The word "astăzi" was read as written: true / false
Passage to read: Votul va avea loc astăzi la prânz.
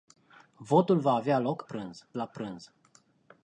false